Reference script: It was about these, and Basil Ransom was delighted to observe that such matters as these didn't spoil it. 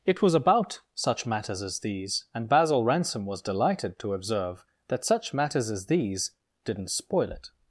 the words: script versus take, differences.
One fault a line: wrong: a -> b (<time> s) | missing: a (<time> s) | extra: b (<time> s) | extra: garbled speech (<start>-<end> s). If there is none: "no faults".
extra: such matters as (0.9 s)